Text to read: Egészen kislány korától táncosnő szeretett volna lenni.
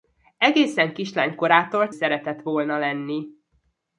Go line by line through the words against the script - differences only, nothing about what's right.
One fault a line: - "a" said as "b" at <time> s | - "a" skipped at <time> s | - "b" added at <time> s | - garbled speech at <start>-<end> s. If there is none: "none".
- "táncosnő" skipped at 1.9 s